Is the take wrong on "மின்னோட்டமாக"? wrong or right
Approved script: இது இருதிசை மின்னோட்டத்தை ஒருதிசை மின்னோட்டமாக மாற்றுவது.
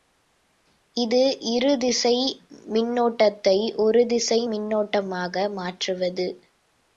right